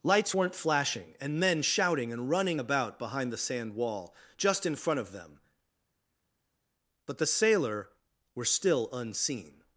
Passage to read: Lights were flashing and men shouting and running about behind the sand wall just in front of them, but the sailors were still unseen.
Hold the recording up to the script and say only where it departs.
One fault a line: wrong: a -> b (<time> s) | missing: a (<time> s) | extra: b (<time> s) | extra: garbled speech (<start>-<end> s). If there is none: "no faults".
wrong: were -> weren't (0.3 s)
wrong: sailors -> sailor (7.3 s)